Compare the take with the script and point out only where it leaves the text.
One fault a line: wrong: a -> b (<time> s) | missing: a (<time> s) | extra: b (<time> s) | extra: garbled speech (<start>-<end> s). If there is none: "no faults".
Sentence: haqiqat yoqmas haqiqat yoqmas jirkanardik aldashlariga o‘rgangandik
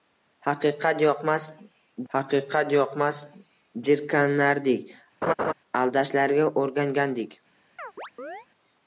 no faults